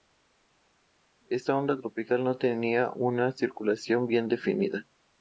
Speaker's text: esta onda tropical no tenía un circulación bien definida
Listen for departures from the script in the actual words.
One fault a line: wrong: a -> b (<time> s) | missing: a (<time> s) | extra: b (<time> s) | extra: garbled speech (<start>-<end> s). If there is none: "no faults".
wrong: un -> una (2.9 s)